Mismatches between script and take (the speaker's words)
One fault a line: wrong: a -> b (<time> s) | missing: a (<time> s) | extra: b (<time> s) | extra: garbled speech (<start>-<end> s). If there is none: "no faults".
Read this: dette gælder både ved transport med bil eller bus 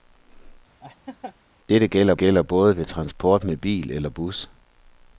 extra: gælder (2.1 s)